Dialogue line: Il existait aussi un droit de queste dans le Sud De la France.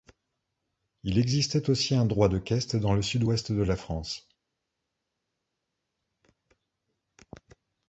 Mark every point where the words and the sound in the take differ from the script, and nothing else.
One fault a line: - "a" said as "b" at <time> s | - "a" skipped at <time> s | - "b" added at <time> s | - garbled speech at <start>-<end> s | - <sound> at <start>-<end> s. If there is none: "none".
- "Ouest" added at 3.2 s